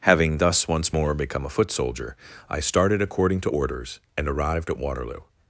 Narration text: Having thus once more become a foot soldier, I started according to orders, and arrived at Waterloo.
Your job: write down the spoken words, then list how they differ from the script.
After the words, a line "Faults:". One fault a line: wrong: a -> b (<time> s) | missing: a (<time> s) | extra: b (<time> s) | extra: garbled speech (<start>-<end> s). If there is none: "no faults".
Having thus once more become a foot soldier, I started according to orders, and arrived at Waterloo.
Faults:
no faults